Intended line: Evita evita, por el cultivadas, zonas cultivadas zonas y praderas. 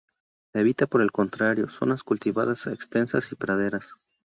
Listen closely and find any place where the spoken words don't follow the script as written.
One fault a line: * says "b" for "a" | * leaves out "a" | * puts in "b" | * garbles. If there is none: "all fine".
* leaves out "evita"
* says "contrario" for "cultivadas"
* says "extensas" for "zonas"